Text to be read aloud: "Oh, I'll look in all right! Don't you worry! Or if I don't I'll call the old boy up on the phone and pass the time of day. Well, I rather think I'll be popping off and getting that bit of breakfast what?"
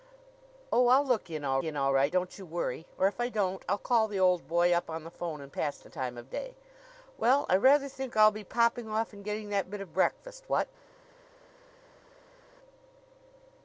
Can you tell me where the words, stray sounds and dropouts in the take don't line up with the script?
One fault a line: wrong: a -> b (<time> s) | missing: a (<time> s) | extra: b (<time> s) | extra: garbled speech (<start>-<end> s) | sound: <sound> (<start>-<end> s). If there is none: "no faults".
extra: in all (1.6 s)